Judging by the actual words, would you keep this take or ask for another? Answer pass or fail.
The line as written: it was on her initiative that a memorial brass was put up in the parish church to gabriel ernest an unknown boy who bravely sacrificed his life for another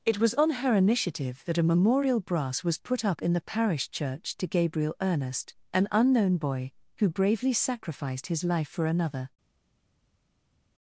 pass